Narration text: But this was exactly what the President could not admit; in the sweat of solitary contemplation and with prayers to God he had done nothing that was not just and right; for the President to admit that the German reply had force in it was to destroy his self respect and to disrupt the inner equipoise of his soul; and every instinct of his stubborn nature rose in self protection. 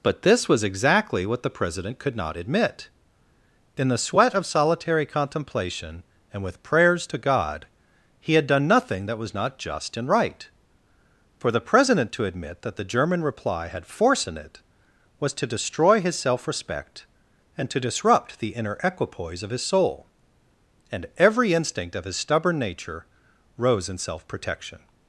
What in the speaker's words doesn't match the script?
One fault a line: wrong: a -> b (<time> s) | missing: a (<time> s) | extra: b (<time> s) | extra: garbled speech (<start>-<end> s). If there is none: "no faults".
no faults